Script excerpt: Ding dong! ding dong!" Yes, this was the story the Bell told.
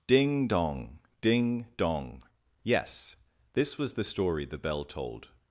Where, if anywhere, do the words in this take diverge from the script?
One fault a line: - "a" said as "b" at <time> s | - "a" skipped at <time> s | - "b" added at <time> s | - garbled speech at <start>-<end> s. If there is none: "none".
none